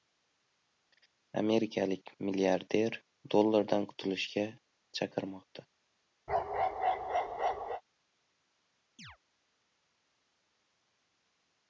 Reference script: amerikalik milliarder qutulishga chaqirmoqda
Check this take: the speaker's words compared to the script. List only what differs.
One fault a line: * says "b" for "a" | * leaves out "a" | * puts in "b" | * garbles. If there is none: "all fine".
* puts in "dollardan"